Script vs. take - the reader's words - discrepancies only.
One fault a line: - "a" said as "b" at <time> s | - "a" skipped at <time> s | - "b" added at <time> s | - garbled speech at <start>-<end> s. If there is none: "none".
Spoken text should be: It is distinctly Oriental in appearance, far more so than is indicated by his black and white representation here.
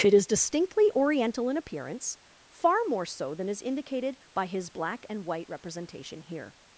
none